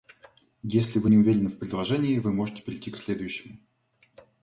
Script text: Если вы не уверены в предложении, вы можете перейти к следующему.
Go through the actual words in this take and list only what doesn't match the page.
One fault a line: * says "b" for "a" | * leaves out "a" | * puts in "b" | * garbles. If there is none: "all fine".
all fine